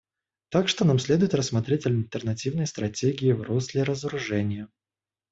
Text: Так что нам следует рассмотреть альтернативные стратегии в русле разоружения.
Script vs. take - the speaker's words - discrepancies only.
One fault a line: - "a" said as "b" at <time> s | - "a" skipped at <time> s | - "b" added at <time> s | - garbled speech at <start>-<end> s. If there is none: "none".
none